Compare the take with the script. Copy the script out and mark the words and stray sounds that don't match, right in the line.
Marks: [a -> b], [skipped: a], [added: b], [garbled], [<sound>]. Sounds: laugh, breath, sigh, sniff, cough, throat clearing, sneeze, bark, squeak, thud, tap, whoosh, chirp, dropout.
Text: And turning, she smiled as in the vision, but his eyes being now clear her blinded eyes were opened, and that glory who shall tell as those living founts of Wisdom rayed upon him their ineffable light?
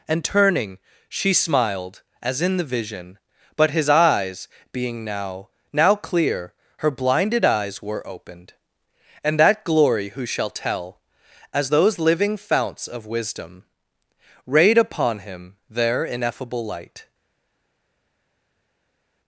And turning, she smiled as in the vision, but his eyes being now [added: now] clear her blinded eyes were opened, and that glory who shall tell as those living founts of Wisdom rayed upon him their ineffable light?